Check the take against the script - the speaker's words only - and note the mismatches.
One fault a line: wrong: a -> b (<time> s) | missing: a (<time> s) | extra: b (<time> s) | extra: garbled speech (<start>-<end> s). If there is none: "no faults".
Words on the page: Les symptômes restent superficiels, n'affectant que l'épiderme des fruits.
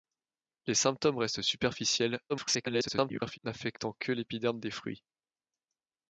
extra: garbled speech (2.3-3.4 s)